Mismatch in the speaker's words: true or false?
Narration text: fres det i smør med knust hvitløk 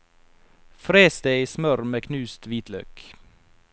false